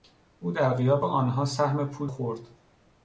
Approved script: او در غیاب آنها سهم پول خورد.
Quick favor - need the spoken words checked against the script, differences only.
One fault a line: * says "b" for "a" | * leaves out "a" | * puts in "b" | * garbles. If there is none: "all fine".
all fine